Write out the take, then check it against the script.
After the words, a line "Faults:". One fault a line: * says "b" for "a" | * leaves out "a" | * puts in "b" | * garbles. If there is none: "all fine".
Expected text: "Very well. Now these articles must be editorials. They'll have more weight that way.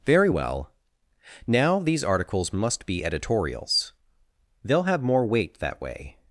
"Very well. Now these articles must be editorials. They'll have more weight that way.
Faults:
all fine